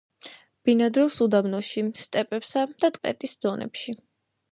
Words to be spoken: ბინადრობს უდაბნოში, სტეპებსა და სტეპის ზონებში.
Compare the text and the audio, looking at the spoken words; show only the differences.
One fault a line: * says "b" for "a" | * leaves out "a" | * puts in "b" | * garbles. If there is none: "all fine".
all fine